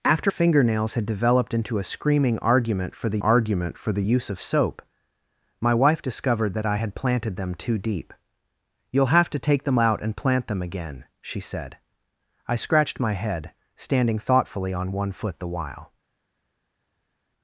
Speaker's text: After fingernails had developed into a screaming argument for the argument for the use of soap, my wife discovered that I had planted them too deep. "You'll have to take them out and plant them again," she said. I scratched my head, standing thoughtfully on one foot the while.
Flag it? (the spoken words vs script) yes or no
no